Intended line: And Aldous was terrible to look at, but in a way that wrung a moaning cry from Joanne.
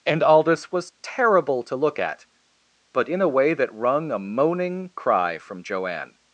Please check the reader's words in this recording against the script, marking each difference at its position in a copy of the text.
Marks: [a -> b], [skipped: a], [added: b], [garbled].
And Aldous was terrible to look at, but in a way that wrung a moaning cry from Joanne.